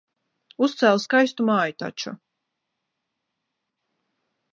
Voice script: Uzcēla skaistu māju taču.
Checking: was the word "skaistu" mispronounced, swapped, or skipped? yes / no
no